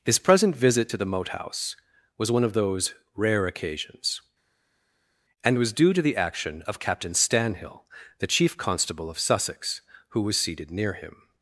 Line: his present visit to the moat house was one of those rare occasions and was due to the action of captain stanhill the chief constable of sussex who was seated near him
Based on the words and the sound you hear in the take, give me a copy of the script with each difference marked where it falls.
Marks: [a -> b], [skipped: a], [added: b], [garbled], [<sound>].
his present visit to the moat house was one of those rare occasions and was due to the action of captain stanhill the chief constable of sussex who was seated near him